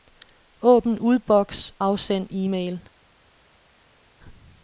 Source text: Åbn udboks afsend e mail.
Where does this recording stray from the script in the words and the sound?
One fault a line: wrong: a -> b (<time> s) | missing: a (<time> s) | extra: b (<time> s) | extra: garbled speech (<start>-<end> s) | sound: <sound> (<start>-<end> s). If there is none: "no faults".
no faults